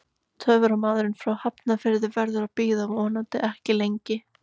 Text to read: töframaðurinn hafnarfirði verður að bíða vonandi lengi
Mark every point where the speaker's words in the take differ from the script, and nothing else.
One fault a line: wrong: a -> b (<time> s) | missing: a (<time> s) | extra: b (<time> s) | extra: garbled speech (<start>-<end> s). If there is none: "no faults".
extra: frá (1.2 s)
extra: ekki (3.5 s)